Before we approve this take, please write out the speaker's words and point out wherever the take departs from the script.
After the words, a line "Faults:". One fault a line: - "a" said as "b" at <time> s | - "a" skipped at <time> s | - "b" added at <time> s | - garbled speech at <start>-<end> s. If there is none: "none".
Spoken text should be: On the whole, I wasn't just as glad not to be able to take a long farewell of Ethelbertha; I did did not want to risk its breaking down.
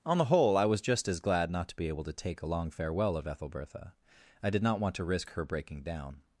On the whole, I was just as glad not to be able to take a long farewell of Ethelbertha; I did not want to risk her breaking down.
Faults:
- "wasn't" said as "was" at 0.7 s
- "did" skipped at 4.6 s
- "its" said as "her" at 5.3 s